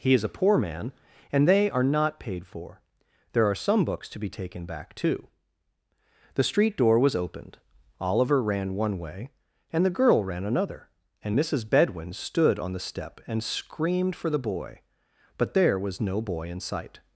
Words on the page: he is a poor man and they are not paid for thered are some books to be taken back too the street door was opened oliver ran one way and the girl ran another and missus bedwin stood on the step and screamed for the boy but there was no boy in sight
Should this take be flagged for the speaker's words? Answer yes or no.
yes